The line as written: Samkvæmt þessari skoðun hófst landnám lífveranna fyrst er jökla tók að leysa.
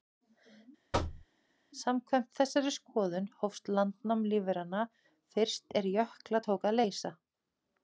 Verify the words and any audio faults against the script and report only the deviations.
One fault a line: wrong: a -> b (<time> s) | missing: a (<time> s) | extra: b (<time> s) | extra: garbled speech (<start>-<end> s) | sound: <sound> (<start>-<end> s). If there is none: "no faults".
sound: thud (0.9-1.3 s)